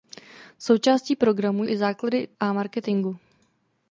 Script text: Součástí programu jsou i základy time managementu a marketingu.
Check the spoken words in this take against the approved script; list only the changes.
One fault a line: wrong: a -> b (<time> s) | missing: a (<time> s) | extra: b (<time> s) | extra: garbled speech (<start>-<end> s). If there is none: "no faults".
missing: jsou (1.6 s)
missing: time managementu (2.3 s)